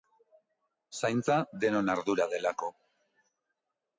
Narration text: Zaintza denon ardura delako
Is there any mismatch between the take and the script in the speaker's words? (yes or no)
no